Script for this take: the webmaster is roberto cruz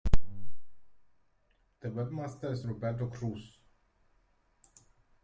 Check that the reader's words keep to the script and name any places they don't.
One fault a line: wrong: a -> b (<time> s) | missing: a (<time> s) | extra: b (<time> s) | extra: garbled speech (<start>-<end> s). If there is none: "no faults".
no faults